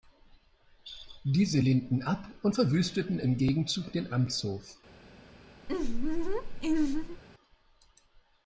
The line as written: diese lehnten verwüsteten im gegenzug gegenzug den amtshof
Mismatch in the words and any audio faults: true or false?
true